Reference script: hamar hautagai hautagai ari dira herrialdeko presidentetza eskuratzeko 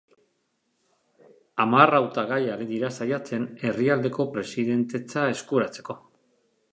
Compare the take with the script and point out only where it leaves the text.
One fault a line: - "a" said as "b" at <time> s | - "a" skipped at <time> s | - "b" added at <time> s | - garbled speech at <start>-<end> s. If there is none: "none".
- "hautagai" skipped at 2.4 s
- "saiatzen" added at 3.0 s